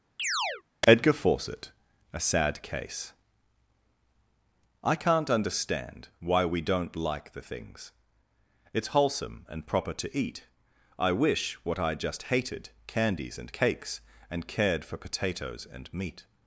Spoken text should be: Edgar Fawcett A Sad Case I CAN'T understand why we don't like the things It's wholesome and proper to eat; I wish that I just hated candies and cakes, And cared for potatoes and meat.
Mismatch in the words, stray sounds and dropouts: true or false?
true